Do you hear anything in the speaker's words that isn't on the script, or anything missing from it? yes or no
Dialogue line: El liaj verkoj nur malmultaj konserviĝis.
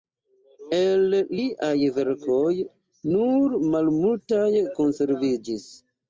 no